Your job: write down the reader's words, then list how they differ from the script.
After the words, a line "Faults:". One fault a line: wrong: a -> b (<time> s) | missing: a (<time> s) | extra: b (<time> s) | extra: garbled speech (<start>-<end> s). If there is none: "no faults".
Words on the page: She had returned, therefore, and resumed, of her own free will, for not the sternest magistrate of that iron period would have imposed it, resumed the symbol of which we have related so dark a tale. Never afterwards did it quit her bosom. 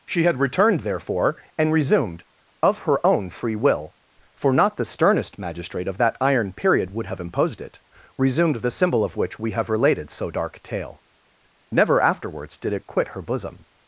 She had returned, therefore, and resumed, of her own free will, for not the sternest magistrate of that iron period would have imposed it, resumed the symbol of which we have related so dark tale. Never afterwards did it quit her bosom.
Faults:
missing: a (10.6 s)